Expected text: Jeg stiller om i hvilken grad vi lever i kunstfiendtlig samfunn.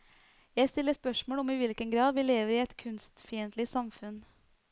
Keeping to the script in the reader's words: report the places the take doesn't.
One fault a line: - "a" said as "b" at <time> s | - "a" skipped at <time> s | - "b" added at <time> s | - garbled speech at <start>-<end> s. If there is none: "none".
- "spørsmål" added at 0.9 s
- "et" added at 2.6 s